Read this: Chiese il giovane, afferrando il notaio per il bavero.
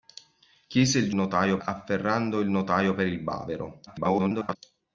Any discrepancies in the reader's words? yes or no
yes